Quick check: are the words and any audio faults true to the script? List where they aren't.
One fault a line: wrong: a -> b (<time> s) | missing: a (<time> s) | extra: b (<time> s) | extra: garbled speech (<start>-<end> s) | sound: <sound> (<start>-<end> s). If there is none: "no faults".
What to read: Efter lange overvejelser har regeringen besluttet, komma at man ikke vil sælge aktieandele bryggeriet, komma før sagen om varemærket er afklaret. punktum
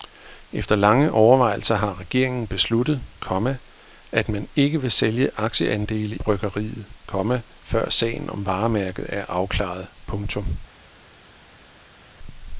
no faults